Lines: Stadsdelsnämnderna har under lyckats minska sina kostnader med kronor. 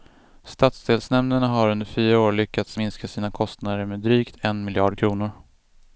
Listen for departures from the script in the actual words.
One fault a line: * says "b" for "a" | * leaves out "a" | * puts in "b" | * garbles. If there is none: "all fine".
* puts in "fyra år"
* puts in "drygt en miljard"